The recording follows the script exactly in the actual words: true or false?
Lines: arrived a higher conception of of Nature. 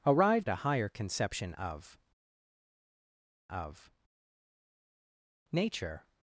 true